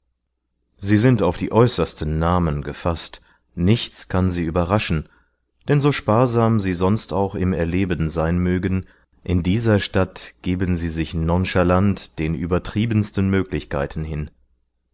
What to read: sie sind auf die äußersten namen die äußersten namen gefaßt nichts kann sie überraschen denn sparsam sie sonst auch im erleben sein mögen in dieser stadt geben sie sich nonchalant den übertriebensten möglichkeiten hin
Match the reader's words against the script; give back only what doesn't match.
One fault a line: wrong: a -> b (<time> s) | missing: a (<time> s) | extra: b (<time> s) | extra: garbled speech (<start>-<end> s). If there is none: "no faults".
missing: die äußersten namen (2.6 s)
extra: so (5.8 s)